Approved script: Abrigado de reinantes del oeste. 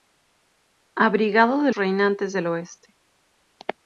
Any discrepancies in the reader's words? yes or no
no